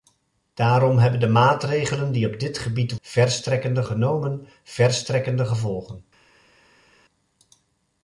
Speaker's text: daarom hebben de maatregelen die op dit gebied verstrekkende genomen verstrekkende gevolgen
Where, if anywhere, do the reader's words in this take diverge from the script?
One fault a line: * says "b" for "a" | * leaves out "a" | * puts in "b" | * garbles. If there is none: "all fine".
all fine